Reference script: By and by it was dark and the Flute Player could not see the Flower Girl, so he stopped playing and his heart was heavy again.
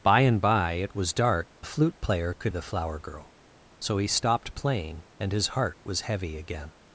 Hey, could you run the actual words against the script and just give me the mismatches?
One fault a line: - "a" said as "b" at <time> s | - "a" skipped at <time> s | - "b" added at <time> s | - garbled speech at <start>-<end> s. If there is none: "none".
- "and" skipped at 1.5 s
- "not see" skipped at 2.5 s